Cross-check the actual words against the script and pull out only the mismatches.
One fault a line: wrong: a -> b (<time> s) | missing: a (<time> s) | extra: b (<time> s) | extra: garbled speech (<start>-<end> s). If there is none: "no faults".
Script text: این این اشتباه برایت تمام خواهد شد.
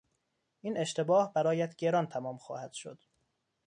missing: این (0.8 s)
extra: گران (1.8 s)